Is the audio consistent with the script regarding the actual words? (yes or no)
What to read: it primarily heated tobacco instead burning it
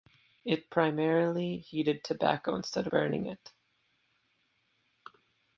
yes